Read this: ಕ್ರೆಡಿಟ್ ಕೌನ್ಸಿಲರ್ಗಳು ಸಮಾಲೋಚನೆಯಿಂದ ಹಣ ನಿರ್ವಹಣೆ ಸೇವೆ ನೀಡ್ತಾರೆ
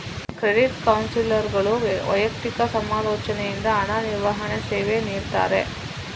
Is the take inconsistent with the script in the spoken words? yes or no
yes